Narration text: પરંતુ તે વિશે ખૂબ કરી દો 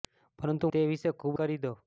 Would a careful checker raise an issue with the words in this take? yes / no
no